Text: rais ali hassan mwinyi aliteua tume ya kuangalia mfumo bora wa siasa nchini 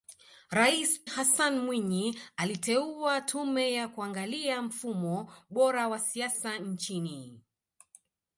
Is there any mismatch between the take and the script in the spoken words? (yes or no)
yes